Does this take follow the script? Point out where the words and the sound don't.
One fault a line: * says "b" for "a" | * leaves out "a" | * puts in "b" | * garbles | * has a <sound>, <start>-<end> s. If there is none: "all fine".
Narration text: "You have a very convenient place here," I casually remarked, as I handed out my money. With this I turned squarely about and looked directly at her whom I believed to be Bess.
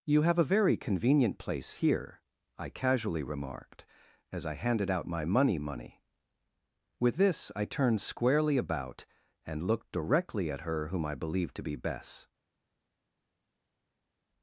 * puts in "money"